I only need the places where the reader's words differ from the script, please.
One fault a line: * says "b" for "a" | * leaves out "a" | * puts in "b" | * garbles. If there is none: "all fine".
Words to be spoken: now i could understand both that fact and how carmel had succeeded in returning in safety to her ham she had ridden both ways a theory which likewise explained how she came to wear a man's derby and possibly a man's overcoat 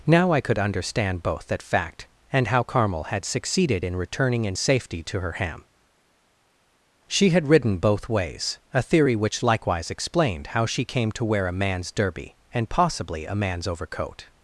all fine